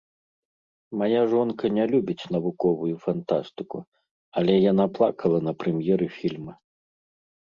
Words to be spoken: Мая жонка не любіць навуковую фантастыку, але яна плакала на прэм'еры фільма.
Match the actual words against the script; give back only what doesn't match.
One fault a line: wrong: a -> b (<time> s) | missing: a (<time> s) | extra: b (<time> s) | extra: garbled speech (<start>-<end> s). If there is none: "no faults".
no faults